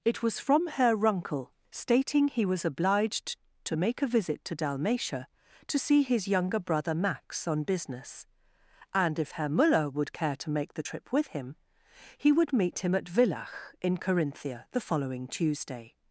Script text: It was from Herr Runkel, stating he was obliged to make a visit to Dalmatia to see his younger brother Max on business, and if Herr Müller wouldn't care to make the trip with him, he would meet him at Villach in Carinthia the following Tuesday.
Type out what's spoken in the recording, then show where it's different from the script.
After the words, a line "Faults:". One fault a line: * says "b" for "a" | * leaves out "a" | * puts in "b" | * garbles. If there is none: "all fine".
It was from Herr Runkel, stating he was obliged to make a visit to Dalmatia to see his younger brother Max on business, and if Herr Müller would care to make the trip with him, he would meet him at Villach in Carinthia the following Tuesday.
Faults:
* says "would" for "wouldn't"